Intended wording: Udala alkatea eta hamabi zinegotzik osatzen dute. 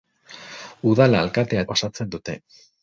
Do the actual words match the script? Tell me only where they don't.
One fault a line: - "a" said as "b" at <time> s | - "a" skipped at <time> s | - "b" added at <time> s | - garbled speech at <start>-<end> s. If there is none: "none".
- "eta hamabi zinegotzik" skipped at 1.6 s